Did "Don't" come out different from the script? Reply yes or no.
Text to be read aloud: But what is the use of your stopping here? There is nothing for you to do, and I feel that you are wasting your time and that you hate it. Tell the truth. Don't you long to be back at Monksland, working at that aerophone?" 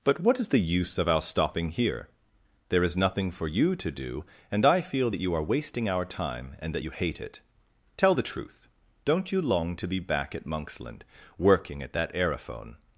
no